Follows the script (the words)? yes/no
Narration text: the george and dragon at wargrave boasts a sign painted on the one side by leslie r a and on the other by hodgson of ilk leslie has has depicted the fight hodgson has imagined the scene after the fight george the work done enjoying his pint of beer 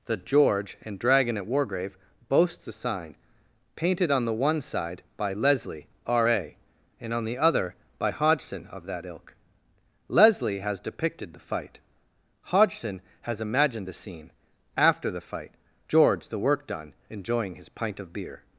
no